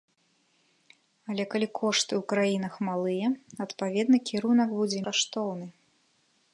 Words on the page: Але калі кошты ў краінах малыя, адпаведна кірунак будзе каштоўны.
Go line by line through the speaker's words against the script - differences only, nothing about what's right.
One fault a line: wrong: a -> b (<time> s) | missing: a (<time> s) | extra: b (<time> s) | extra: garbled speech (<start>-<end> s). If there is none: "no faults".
no faults